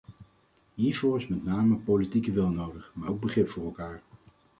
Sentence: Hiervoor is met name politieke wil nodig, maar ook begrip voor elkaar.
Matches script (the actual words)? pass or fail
pass